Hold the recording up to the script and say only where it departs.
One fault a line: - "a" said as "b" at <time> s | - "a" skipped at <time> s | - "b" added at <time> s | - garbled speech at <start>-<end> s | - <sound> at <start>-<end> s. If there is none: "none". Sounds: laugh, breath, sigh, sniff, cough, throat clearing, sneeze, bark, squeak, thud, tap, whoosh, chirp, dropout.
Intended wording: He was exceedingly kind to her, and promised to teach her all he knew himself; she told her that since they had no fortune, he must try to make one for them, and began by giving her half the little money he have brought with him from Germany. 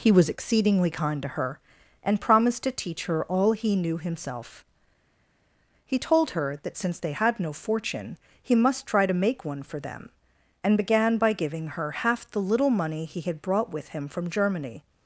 - "she" said as "he" at 5.9 s
- "have" said as "had" at 13.2 s